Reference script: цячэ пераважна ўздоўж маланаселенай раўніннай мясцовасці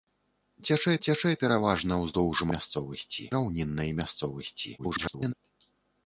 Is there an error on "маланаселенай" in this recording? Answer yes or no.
yes